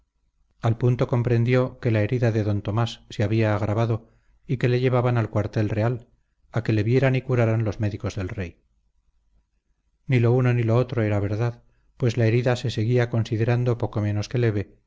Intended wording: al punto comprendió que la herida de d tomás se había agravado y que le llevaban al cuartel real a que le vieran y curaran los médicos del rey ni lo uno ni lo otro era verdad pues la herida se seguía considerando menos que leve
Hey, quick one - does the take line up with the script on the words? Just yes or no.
no